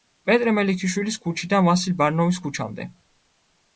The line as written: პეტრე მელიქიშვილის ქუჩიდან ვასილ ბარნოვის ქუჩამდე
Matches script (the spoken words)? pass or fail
pass